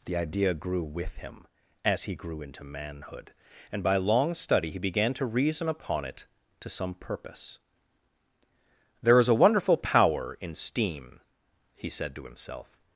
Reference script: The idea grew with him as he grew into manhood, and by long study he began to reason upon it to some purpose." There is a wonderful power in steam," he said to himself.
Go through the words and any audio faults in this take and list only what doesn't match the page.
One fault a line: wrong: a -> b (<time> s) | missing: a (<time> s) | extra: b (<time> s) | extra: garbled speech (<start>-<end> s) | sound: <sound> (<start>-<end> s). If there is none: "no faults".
no faults